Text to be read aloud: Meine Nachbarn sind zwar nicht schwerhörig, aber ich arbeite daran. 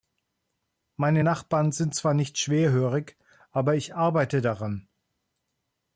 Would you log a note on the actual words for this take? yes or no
no